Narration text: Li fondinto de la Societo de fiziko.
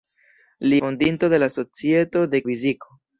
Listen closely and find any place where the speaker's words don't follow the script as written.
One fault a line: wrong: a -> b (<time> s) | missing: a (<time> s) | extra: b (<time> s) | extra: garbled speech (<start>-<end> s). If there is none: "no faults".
no faults